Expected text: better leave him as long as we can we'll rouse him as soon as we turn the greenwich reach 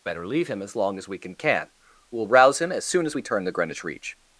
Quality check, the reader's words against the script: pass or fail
fail